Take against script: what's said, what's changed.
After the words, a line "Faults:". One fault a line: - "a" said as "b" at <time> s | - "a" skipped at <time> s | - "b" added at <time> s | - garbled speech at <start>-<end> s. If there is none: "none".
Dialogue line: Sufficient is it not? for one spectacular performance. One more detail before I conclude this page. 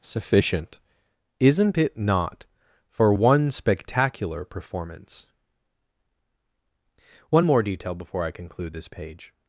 Sufficient isn't it not? for one spectacular performance. One more detail before I conclude this page.
Faults:
- "is" said as "isn't" at 1.4 s